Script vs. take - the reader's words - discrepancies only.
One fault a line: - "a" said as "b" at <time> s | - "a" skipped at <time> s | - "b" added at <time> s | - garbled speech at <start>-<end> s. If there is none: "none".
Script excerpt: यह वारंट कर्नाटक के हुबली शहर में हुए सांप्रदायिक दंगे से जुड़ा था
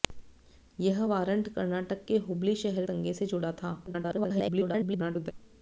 - "में हुए सांप्रदायिक" skipped at 2.9 s
- garbled speech at 3.9-5.3 s